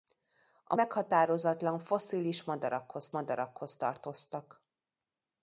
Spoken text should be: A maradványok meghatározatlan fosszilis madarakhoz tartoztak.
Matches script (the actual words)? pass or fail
fail